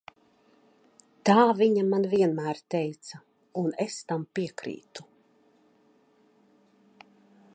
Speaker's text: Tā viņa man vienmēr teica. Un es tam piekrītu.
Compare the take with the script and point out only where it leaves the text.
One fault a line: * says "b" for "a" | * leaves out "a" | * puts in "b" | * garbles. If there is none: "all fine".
all fine